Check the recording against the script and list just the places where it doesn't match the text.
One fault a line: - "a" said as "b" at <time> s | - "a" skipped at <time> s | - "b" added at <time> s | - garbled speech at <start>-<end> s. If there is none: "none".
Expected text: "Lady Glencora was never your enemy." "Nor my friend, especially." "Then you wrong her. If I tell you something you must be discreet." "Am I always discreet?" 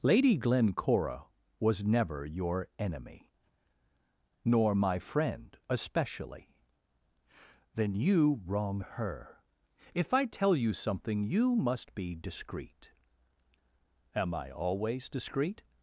none